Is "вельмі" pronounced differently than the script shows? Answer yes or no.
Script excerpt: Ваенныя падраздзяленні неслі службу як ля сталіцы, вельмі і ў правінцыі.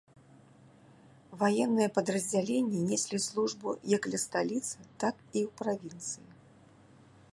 yes